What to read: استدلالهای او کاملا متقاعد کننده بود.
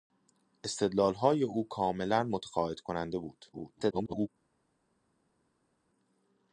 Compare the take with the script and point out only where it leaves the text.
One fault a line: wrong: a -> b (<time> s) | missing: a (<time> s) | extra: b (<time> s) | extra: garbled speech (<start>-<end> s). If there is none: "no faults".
extra: garbled speech (3.5-4.3 s)